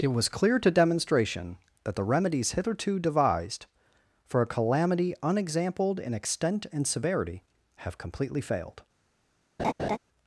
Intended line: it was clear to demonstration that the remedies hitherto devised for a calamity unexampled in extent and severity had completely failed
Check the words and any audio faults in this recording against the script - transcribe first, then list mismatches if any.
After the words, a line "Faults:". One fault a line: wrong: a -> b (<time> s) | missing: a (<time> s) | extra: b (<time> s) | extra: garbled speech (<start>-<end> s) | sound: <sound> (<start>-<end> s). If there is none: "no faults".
it was clear to demonstration that the remedies hitherto devised for a calamity unexampled in extent and severity have completely failed
Faults:
wrong: had -> have (7.8 s)
sound: laugh (9.6-10.0 s)